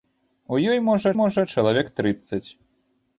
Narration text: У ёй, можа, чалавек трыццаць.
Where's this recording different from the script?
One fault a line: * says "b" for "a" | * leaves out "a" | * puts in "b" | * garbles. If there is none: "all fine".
* puts in "можа"